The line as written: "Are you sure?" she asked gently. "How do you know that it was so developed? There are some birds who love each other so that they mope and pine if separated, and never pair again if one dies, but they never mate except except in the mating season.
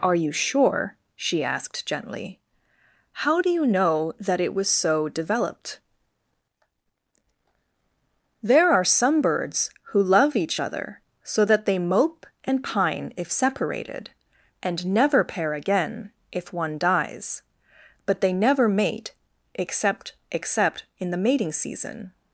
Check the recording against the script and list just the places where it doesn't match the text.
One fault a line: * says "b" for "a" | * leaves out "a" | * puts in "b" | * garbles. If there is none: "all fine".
all fine